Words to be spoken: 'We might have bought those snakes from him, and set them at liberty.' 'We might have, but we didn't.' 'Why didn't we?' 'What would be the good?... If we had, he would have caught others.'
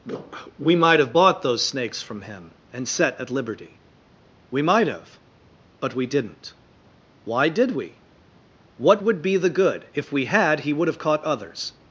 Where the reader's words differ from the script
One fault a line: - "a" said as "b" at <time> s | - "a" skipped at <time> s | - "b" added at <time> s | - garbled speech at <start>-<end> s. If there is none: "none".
- "them" skipped at 3.2 s
- "didn't" said as "did" at 7.5 s